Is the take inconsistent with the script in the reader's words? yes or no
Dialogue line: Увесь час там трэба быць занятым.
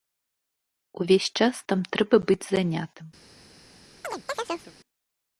no